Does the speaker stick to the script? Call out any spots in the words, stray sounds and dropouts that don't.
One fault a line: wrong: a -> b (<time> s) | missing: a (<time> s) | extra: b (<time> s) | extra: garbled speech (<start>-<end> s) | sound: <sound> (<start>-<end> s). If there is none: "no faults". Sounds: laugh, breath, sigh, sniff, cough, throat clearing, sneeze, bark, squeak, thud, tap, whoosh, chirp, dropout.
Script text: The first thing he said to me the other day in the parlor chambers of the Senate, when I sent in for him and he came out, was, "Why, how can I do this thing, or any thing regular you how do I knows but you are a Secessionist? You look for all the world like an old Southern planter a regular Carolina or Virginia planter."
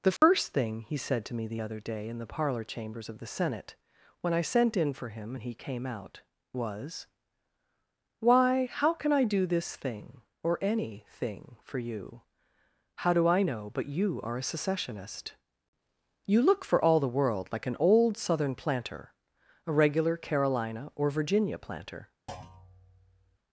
sound: dropout (0.2-0.2 s)
wrong: regular -> for (11.6 s)
wrong: knows -> know (13.4 s)
sound: thud (22.3-23.4 s)